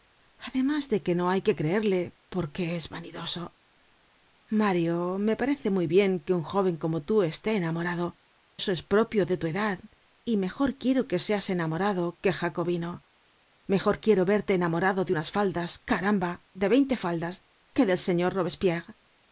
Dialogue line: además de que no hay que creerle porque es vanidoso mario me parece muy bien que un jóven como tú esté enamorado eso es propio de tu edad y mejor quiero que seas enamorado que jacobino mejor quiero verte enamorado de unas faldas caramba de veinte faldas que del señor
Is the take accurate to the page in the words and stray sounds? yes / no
yes